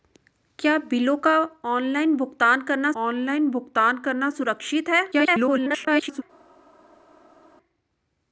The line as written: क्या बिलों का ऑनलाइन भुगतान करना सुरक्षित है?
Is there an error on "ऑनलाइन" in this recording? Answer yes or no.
no